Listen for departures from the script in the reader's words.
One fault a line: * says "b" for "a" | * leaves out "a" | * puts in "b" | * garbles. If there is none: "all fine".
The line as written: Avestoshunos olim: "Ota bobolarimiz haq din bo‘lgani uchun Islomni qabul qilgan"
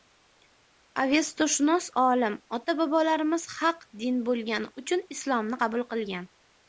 all fine